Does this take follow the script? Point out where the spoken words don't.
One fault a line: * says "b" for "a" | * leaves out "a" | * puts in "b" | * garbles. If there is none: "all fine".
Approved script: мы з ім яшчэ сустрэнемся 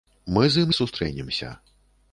* leaves out "яшчэ"